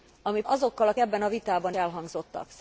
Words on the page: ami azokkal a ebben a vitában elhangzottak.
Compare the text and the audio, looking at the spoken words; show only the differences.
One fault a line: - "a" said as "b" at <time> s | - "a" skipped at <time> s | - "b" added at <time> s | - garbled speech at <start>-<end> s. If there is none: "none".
none